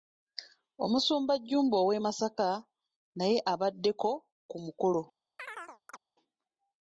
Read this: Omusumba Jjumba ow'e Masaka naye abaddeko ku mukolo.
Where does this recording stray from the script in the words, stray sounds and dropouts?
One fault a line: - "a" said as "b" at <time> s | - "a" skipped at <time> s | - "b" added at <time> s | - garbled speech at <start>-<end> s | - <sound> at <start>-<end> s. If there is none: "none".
- chirp at 5.4-6.0 s